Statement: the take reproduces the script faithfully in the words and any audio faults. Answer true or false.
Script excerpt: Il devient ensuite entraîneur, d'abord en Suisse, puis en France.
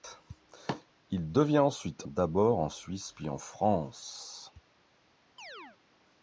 false